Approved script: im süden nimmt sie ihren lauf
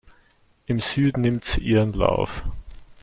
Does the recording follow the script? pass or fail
pass